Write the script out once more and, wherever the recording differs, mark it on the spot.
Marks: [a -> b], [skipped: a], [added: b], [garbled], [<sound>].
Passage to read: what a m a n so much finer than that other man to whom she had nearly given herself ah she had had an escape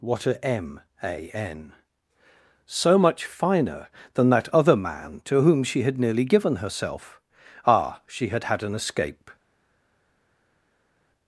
what a m a n so much finer than that other man to whom she had nearly given herself ah she had had an escape